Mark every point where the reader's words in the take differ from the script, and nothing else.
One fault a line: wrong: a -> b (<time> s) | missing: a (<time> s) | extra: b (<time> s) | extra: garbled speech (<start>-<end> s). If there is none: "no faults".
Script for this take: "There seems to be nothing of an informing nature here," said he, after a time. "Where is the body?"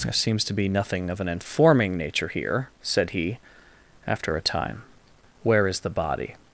no faults